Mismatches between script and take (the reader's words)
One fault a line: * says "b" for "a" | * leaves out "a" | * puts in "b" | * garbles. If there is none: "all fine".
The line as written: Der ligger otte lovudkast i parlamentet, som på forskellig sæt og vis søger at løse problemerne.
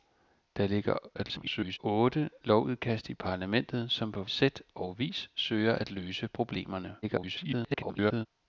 * garbles
* leaves out "forskellig"
* garbles